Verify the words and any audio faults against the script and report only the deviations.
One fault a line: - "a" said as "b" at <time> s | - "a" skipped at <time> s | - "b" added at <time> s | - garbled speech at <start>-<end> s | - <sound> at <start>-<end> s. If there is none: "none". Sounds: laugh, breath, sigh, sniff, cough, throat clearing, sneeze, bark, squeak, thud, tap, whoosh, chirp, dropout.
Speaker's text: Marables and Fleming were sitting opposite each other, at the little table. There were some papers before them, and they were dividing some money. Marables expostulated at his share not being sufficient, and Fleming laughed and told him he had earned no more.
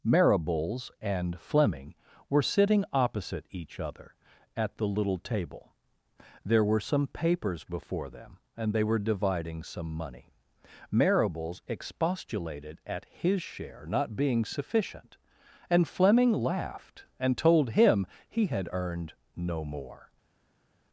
none